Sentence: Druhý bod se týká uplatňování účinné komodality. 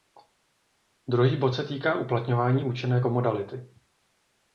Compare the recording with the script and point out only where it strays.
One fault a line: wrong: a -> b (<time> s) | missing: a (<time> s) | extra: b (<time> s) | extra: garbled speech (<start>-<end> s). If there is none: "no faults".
no faults